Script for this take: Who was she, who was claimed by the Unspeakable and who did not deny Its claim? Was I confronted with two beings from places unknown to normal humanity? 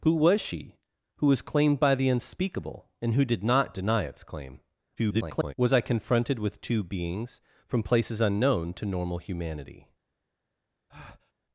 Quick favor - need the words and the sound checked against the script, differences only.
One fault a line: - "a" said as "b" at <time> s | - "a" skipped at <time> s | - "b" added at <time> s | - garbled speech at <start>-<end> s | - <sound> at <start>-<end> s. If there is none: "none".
- garbled speech at 5.0-5.5 s
- breath at 10.9-11.3 s